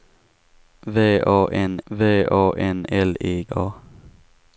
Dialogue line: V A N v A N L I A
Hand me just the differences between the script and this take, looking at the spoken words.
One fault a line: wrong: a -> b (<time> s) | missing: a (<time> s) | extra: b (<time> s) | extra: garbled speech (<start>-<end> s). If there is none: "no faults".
no faults